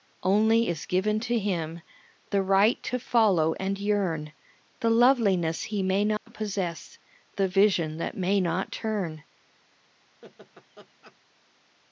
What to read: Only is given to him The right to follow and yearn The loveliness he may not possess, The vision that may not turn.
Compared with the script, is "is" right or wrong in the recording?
right